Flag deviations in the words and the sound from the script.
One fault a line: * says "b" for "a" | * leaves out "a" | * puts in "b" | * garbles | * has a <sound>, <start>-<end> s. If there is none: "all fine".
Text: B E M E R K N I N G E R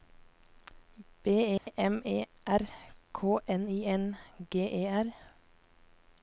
* has a dropout, 1.6-1.7 s